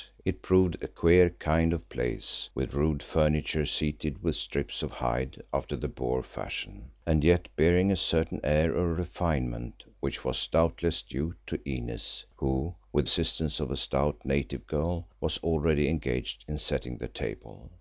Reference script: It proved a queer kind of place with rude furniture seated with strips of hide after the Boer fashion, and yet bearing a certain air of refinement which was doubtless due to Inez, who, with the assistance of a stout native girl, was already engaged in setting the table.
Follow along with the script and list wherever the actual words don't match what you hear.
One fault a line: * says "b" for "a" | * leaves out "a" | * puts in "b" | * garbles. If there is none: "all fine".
* leaves out "the"